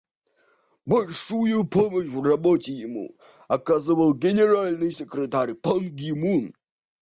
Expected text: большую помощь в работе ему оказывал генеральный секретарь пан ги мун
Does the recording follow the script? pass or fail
pass